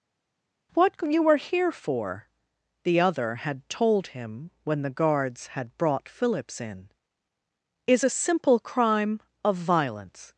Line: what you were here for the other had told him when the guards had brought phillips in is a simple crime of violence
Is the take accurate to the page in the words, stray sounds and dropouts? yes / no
yes